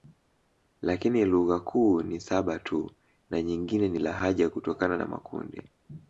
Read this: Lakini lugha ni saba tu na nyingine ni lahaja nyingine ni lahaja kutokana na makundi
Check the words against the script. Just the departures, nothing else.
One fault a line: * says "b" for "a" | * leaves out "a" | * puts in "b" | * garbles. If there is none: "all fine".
* puts in "kuu"
* leaves out "nyingine ni lahaja"